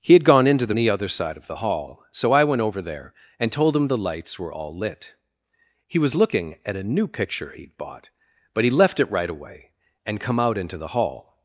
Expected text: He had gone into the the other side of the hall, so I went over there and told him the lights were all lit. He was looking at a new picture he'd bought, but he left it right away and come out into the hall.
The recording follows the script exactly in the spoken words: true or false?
true